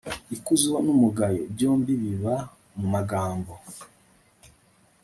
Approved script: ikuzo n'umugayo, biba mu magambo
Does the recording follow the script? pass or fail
fail